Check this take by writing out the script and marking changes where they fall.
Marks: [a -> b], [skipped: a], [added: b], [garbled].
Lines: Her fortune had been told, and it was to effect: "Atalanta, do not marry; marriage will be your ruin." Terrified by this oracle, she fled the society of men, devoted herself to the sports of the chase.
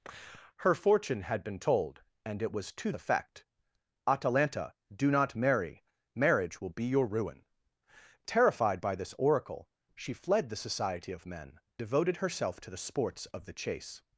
Her fortune had been told, and it was to effect: "Atalanta, do not marry; marriage will be your ruin." Terrified by this oracle, she fled the society of men, devoted herself to the sports of the chase.